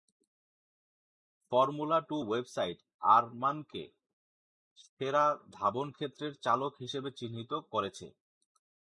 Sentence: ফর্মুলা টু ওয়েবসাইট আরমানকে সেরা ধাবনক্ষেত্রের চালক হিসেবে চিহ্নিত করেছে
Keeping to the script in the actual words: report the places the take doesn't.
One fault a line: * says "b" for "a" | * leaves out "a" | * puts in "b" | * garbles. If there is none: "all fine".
all fine